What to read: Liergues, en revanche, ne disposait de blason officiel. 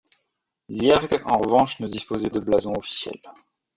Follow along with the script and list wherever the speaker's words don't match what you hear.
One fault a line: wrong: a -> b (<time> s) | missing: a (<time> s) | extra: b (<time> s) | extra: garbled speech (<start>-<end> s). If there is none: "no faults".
no faults